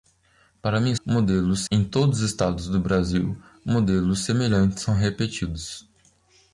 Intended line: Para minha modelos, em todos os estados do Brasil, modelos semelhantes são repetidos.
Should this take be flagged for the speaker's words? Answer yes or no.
no